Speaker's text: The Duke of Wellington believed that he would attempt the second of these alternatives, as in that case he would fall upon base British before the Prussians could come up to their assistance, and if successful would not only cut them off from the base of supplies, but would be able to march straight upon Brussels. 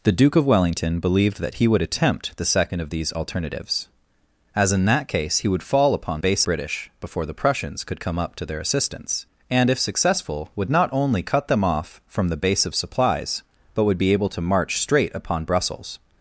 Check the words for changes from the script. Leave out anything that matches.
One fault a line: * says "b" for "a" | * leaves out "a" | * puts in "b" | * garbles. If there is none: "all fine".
all fine